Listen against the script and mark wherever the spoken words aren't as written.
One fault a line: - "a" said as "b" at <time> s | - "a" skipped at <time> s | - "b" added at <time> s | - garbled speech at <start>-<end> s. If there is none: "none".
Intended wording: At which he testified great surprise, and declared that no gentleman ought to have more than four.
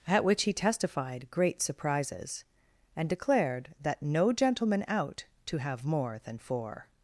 - "surprise" said as "surprises" at 1.6 s
- "ought" said as "out" at 4.9 s